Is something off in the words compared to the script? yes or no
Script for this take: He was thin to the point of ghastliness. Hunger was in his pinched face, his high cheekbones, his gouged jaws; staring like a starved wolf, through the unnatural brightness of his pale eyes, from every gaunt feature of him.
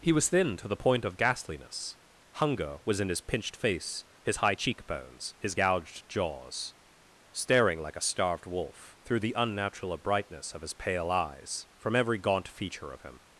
no